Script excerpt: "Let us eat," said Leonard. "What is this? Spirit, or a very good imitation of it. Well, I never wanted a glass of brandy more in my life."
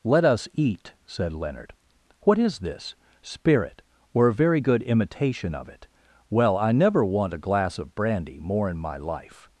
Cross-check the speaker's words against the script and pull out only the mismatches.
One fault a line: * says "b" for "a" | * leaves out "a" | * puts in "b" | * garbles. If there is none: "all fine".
* says "want" for "wanted"